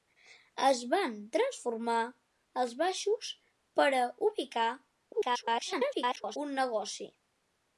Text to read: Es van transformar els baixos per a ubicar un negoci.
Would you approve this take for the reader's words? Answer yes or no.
no